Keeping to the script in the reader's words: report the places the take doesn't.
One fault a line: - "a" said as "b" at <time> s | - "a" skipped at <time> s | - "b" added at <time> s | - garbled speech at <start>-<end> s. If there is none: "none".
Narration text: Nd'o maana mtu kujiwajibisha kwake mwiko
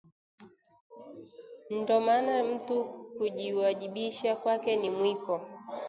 - "ni" added at 4.8 s